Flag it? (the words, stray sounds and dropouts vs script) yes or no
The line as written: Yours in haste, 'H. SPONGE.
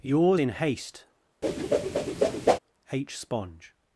yes